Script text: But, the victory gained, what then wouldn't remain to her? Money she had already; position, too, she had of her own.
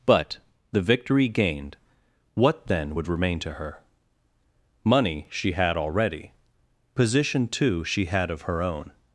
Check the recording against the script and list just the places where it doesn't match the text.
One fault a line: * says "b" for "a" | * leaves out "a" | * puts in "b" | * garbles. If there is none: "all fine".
* says "would" for "wouldn't"